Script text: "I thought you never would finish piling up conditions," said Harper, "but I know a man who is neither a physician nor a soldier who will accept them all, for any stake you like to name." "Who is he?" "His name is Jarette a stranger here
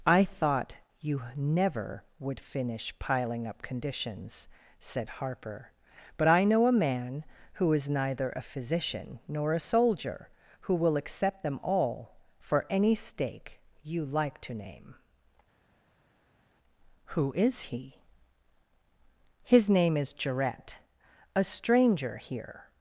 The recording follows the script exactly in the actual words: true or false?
true